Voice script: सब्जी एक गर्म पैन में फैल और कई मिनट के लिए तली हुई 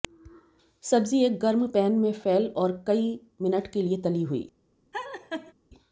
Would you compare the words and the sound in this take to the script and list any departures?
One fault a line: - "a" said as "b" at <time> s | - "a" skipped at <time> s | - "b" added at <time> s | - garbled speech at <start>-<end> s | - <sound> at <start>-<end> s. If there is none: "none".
- laugh at 4.9-5.5 s